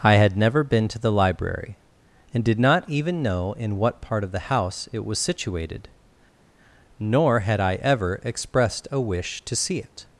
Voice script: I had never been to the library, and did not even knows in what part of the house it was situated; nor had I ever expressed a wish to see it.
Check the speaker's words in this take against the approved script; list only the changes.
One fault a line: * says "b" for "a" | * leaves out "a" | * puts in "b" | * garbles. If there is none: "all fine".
* says "know" for "knows"